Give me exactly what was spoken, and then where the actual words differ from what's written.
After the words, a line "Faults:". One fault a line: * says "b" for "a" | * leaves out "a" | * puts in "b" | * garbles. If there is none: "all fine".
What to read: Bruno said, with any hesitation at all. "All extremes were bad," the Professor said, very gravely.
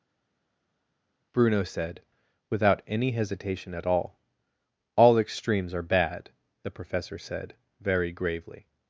Bruno said, without any hesitation at all. "All extremes are bad," the Professor said, very gravely.
Faults:
* says "without" for "with"
* says "are" for "were"